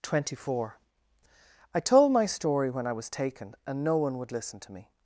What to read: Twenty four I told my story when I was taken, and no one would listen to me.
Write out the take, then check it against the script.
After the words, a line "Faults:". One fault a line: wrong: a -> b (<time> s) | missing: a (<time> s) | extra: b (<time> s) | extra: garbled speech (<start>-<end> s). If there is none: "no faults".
Twenty four I told my story when I was taken, and no one would listen to me.
Faults:
no faults